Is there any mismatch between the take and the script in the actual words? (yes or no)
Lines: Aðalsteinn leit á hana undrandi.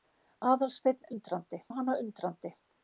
yes